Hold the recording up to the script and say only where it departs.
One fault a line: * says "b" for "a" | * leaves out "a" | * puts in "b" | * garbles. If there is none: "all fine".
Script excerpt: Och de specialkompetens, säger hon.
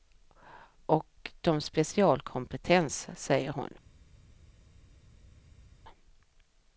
all fine